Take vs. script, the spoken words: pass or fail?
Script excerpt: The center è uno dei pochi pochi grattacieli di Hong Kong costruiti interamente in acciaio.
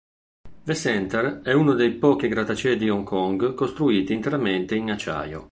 fail